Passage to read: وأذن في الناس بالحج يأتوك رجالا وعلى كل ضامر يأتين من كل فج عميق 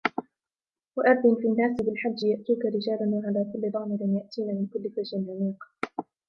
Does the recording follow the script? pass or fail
pass